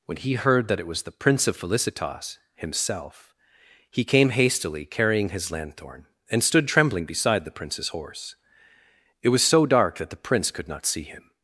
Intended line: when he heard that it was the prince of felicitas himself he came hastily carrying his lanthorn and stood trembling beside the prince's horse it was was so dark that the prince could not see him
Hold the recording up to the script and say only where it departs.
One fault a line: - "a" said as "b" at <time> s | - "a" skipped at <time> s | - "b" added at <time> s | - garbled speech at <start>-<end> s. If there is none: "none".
- "was" skipped at 9.4 s